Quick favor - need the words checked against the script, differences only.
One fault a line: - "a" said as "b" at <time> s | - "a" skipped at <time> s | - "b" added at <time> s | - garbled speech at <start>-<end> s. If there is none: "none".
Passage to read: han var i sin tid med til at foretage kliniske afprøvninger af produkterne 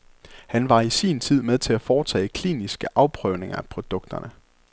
none